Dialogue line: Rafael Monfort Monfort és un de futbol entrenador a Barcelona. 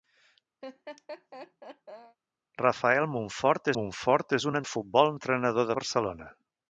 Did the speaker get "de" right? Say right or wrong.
right